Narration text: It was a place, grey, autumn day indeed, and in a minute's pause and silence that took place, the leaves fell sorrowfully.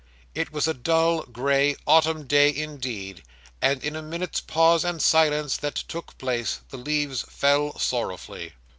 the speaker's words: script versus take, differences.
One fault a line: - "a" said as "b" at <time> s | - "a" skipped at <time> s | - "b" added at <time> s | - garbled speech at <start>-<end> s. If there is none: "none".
- "place" said as "dull" at 0.7 s